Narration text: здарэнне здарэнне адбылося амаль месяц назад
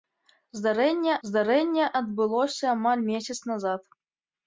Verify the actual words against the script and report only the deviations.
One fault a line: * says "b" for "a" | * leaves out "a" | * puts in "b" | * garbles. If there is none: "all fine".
all fine